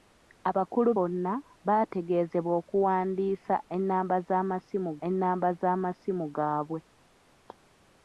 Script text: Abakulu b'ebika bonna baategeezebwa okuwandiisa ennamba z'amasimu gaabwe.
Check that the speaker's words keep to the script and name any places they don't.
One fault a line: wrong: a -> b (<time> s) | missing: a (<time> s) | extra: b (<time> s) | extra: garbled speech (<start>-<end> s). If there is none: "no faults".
missing: b'ebika (0.9 s)
extra: ennamba z'amasimu (5.1 s)